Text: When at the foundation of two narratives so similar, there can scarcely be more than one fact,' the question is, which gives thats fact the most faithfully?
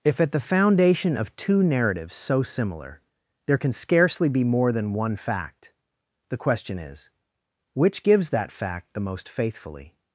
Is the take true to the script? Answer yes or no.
no